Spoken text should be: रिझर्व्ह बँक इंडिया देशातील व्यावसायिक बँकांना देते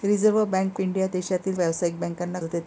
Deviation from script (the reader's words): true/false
false